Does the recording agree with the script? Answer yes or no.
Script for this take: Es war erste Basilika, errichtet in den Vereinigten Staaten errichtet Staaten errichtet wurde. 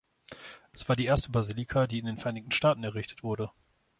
no